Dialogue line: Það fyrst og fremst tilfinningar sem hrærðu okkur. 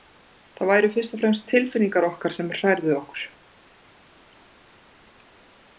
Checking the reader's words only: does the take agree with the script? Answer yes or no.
no